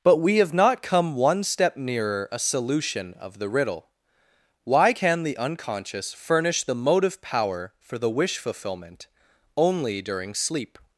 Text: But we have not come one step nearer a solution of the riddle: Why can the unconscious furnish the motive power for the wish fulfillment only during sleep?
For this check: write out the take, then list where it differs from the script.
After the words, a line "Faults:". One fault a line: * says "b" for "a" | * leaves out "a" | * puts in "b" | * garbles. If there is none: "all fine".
But we have not come one step nearer a solution of the riddle: Why can the unconscious furnish the motive power for the wish fulfillment only during sleep?
Faults:
all fine